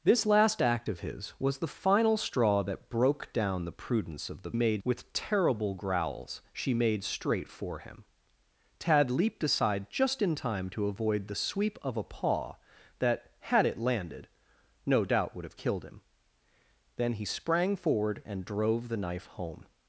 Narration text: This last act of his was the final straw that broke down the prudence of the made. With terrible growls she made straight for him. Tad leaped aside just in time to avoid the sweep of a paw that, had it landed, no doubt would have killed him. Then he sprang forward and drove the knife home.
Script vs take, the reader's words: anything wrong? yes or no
no